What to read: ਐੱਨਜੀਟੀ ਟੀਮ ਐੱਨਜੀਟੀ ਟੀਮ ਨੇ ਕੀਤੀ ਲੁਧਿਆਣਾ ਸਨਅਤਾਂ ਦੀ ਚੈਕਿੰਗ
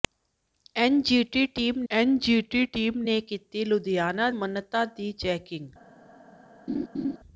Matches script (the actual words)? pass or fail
pass